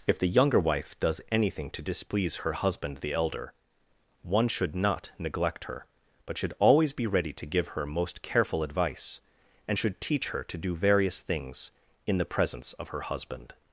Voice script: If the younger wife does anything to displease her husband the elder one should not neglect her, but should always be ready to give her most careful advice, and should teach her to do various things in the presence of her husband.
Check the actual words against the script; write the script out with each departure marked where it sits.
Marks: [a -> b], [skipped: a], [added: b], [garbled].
If the younger wife does anything to displease her husband the elder one should not neglect her, but should always be ready to give her most careful advice, and should teach her to do various things in the presence of her husband.